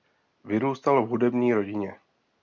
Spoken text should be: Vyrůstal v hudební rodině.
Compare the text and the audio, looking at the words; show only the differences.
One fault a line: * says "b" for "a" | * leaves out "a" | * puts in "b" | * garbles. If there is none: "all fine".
all fine